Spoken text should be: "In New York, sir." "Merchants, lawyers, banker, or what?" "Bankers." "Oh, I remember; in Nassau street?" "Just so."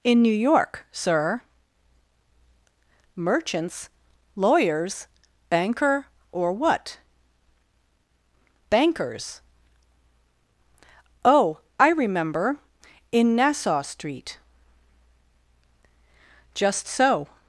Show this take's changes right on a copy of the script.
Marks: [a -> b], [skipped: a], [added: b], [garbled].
"In New York, sir." "Merchants, lawyers, banker, or what?" "Bankers." "Oh, I remember; in Nassau street?" "Just so."